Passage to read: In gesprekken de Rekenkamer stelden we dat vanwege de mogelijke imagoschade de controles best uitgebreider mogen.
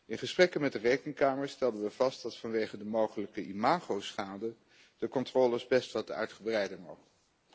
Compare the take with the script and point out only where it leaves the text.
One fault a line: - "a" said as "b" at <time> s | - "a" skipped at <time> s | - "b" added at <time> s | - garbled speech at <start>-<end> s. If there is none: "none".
- "met" added at 0.6 s
- "vast" added at 1.9 s
- "wat" added at 5.9 s